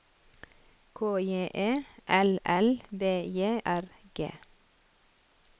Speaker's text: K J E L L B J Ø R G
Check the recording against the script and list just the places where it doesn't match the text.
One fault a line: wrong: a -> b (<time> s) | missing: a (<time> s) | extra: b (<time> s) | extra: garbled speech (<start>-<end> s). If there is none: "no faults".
missing: Ø (3.6 s)